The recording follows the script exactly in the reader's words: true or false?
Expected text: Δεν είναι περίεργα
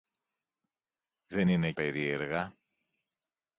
true